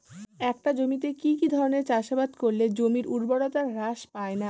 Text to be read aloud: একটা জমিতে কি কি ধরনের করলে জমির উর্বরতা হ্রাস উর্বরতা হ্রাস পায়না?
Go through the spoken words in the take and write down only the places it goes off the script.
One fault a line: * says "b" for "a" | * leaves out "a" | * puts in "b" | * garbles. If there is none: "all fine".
* puts in "চাষাবাদ"
* leaves out "উর্বরতা হ্রাস"